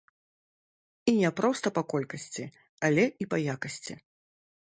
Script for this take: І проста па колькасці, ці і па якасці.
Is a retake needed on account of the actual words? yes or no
yes